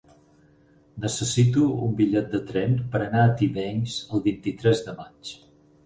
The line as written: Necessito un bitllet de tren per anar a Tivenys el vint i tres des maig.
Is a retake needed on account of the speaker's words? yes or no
yes